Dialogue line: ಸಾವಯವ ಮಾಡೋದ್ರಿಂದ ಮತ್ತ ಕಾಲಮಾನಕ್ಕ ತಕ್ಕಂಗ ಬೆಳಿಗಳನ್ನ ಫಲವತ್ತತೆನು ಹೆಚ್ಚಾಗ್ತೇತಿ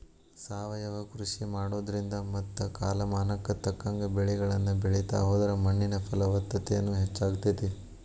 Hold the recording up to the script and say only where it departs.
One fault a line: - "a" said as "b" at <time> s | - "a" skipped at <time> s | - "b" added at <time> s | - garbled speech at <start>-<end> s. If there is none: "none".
- "ಕೃಷಿ" added at 1.1 s
- "ಬೆಳಿತಾ ಹೋದ್ರ ಮಣ್ಣಿನ" added at 4.8 s